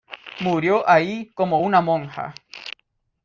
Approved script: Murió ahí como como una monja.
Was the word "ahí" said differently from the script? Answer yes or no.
no